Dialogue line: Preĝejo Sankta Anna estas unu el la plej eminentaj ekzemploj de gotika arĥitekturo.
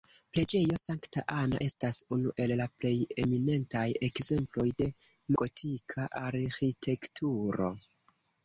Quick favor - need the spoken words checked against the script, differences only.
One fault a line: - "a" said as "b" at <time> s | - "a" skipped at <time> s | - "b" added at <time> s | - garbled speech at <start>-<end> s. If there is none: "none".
none